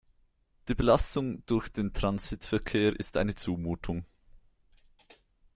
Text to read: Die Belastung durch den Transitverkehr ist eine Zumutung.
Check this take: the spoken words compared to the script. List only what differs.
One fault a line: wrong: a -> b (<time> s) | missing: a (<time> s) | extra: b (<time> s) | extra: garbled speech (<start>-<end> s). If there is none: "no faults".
no faults